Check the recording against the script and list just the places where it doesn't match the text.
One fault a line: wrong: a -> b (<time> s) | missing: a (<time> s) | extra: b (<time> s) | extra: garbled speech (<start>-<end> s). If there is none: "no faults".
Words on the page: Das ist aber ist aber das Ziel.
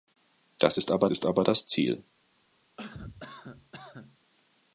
no faults